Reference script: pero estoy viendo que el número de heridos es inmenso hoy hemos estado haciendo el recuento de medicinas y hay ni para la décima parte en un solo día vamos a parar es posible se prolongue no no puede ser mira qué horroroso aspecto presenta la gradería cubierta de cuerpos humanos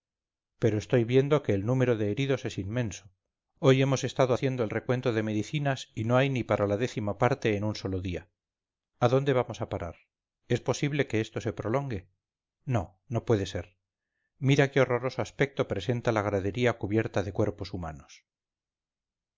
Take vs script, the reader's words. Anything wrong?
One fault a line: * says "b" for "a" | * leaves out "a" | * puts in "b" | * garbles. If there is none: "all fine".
* puts in "no"
* puts in "a dónde"
* puts in "que esto"